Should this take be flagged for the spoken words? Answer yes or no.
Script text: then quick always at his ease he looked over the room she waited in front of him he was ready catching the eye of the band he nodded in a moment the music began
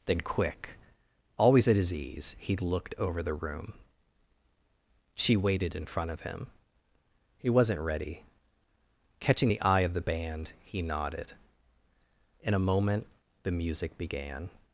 yes